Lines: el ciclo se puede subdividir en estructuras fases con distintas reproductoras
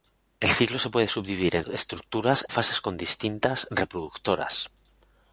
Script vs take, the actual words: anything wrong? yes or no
no